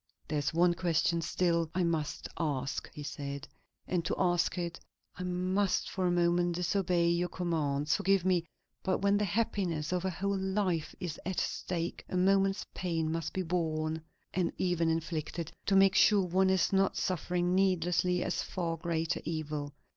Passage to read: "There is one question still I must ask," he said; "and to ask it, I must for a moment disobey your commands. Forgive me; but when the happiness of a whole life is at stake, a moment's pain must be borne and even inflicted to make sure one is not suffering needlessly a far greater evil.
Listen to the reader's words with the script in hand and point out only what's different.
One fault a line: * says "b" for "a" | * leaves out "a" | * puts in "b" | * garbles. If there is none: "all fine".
all fine